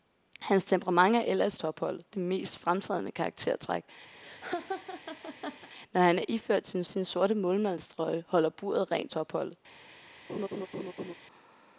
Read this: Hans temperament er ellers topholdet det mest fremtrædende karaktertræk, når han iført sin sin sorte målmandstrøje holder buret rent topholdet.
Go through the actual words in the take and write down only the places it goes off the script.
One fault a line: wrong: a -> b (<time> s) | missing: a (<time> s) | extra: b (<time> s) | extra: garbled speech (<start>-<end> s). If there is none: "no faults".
no faults